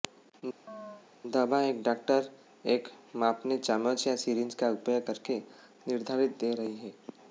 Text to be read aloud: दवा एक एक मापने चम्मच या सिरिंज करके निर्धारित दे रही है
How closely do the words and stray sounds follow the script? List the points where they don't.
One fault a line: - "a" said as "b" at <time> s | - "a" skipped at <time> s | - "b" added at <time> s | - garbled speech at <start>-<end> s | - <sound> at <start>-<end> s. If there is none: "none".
- chirp at 0.7-1.1 s
- "डॉक्टर" added at 1.8 s
- "का उपयोग" added at 4.5 s